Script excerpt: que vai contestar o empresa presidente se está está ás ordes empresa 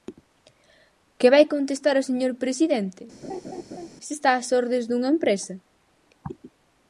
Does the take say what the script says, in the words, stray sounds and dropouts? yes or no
no